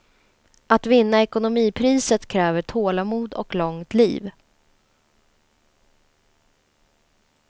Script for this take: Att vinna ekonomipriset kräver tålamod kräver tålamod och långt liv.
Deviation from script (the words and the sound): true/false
true